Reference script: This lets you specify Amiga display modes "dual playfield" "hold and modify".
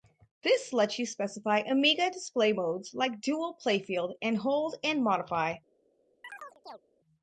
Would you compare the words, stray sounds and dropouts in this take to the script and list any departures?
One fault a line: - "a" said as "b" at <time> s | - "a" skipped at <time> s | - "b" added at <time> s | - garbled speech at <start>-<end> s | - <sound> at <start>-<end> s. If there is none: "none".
- "like" added at 3.0 s
- "and" added at 4.2 s
- chirp at 6.2-6.8 s